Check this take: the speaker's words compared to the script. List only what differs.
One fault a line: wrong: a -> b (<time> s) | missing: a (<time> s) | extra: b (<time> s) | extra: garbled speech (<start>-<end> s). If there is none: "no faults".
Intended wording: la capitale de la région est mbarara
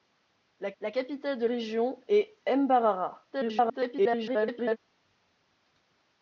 extra: la (0.8 s)
missing: la (1.5 s)
extra: garbled speech (3.3-4.8 s)